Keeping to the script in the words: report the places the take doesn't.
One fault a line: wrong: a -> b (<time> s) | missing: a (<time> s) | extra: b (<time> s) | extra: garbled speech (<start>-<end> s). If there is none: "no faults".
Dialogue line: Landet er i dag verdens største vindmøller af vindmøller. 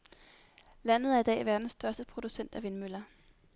wrong: vindmøller -> producent (2.0 s)